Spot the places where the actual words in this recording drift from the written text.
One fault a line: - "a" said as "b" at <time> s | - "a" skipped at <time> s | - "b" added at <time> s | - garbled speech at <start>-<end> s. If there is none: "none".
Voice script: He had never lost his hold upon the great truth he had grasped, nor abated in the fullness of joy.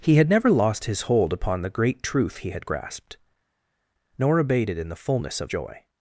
none